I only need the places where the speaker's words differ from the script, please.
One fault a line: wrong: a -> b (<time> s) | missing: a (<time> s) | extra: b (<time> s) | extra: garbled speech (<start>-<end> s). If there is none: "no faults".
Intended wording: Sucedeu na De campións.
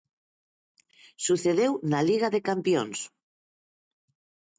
extra: Liga (2.1 s)